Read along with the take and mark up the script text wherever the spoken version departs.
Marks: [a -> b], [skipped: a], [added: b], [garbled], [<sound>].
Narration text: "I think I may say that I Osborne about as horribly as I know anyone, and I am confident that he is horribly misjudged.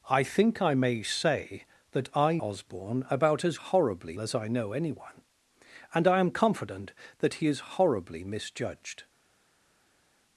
"I think I may say that I Osborne about as horribly as I know anyone, and I am confident that he is horribly misjudged.